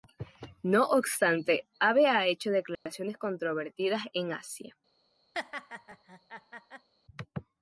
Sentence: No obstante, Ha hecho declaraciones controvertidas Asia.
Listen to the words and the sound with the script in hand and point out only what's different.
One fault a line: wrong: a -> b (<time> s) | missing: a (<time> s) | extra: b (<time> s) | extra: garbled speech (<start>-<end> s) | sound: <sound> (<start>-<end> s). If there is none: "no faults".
extra: Abe (1.8 s)
sound: dropout (2.8-2.9 s)
extra: en (4.1 s)
sound: laugh (5.3-6.9 s)